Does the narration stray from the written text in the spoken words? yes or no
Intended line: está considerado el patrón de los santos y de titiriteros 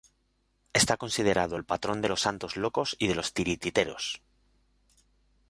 yes